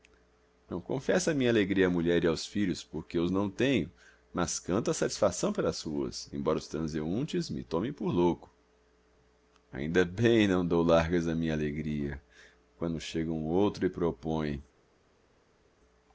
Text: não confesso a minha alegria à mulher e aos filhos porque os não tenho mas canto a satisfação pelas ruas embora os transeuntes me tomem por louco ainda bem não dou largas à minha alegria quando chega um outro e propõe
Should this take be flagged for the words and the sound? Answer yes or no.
no